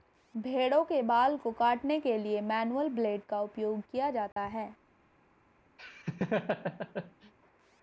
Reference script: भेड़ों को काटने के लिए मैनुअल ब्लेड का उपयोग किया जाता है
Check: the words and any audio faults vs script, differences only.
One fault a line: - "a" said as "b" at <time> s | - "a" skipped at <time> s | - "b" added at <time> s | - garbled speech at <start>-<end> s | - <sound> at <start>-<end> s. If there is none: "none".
- "के बाल" added at 0.8 s
- dropout at 4.3-4.4 s
- laugh at 5.8-7.3 s